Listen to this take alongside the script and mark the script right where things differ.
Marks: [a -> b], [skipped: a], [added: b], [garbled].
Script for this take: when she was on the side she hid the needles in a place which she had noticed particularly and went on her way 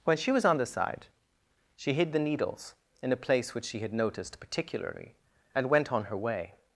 when she was on the side she hid the needles in a place which she had noticed particularly and went on her way